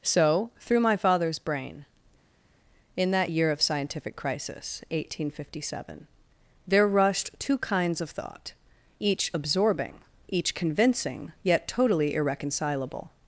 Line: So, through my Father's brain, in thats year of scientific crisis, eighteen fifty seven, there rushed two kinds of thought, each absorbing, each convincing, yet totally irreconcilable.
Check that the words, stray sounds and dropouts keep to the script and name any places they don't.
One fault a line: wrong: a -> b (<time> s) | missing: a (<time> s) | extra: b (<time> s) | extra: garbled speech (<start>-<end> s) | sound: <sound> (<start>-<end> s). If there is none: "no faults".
wrong: thats -> that (3.1 s)